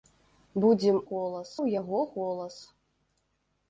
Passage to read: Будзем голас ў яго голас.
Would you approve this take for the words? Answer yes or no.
yes